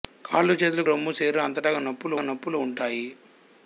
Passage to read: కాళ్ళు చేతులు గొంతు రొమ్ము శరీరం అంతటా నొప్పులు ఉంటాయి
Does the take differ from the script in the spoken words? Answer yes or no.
yes